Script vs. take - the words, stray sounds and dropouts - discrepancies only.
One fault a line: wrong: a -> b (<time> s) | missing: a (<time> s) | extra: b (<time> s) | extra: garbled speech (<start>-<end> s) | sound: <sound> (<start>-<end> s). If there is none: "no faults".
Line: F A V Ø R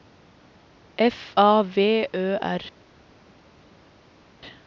no faults